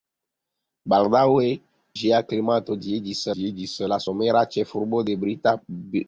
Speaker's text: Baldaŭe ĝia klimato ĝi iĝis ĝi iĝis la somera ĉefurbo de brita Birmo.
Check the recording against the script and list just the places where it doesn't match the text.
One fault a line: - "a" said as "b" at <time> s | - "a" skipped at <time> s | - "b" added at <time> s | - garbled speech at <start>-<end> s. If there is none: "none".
none